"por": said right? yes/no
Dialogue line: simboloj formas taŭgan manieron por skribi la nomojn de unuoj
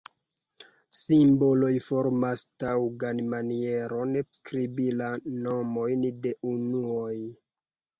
no